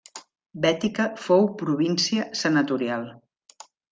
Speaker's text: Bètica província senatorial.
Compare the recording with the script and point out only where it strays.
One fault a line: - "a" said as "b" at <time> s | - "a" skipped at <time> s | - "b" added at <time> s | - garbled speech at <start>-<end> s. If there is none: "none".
- "fou" added at 1.2 s